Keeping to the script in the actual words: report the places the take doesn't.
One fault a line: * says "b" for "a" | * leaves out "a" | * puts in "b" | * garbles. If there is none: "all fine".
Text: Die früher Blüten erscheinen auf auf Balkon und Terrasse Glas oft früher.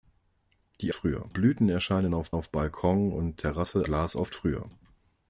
all fine